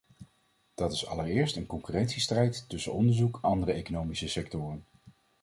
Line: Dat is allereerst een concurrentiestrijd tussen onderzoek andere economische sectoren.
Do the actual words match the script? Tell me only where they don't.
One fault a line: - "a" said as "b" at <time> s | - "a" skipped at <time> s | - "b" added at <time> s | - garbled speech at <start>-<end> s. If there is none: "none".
none